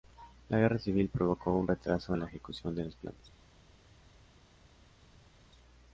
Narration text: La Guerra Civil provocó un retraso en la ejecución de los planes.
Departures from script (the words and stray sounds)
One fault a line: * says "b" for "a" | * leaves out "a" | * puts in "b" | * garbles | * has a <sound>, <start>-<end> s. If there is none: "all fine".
all fine